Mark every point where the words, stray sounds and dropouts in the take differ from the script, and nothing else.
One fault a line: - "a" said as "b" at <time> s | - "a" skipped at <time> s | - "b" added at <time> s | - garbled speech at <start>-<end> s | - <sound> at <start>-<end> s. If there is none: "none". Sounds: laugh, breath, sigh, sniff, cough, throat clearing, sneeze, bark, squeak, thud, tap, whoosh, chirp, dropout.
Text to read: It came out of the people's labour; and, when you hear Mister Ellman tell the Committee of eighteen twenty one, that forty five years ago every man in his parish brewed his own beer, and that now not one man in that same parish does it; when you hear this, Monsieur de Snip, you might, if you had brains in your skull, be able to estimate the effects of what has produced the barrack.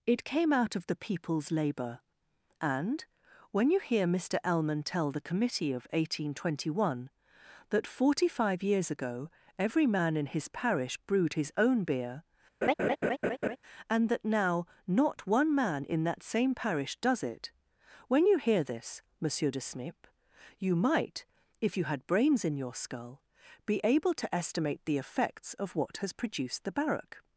- laugh at 12.6-13.6 s